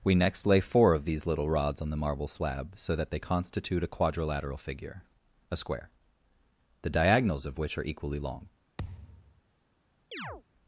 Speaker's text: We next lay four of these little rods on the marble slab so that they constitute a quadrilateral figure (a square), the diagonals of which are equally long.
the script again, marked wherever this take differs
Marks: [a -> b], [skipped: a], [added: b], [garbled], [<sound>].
We next lay four of these little rods on the marble slab so that they constitute a quadrilateral figure (a square), the diagonals of which are equally long. [thud] [chirp]